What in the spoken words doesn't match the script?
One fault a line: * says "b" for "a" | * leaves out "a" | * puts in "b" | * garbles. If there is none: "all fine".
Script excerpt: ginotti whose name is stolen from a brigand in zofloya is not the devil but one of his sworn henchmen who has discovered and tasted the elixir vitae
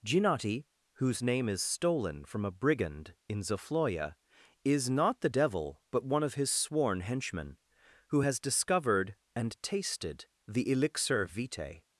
all fine